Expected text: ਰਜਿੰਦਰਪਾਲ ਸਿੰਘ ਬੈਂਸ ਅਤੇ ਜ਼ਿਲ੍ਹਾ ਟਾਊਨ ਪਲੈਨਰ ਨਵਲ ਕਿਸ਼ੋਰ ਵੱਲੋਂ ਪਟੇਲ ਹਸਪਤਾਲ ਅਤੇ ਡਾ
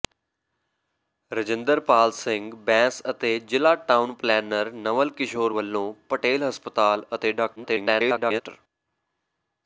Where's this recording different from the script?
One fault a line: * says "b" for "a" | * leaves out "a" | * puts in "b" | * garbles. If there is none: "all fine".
* garbles